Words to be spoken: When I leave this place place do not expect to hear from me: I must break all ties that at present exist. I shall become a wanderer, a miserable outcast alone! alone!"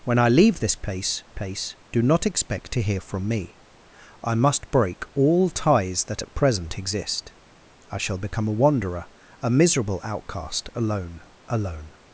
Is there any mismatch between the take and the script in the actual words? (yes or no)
no